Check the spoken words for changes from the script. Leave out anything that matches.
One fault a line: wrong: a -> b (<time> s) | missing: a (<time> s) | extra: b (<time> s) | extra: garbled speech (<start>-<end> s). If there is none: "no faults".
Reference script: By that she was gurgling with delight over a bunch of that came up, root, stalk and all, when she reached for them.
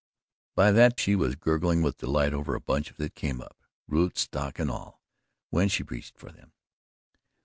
no faults